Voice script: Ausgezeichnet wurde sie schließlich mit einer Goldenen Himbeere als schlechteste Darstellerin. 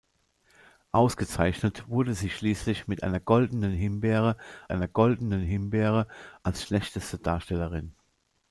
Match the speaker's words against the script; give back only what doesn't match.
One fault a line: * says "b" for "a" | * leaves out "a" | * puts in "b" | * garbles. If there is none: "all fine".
* puts in "einer Goldenen Himbeere"